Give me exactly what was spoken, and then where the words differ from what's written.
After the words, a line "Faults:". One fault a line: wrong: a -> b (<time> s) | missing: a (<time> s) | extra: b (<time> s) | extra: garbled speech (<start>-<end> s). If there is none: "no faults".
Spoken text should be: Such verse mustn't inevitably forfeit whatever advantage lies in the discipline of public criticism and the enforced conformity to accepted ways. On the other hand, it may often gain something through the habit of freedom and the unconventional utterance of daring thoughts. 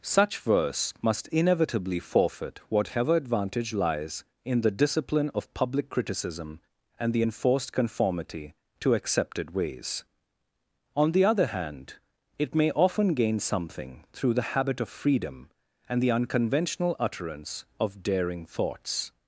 Such verse must inevitably forfeit whatever advantage lies in the discipline of public criticism and the enforced conformity to accepted ways. On the other hand, it may often gain something through the habit of freedom and the unconventional utterance of daring thoughts.
Faults:
wrong: mustn't -> must (1.0 s)